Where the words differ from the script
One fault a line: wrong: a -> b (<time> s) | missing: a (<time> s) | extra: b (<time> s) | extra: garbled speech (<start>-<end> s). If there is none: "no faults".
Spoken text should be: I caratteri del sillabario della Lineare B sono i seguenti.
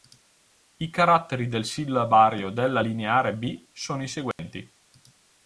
no faults